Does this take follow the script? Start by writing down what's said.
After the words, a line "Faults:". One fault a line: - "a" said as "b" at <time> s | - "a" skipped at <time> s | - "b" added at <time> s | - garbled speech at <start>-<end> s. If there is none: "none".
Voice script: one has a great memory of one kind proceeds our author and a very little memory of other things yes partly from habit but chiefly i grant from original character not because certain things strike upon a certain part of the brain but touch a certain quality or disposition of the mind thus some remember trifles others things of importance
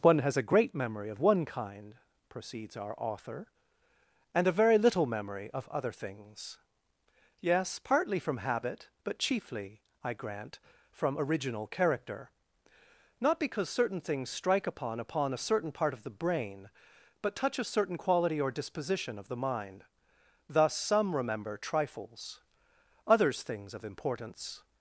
one has a great memory of one kind proceeds our author and a very little memory of other things yes partly from habit but chiefly i grant from original character not because certain things strike upon upon a certain part of the brain but touch a certain quality or disposition of the mind thus some remember trifles others things of importance
Faults:
- "upon" added at 15.0 s